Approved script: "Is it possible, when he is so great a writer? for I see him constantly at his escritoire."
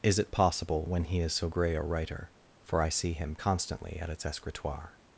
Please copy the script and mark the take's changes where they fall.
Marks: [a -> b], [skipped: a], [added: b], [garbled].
"Is it possible, when he is so [great -> grey] a writer? for I see him constantly at [his -> its] escritoire."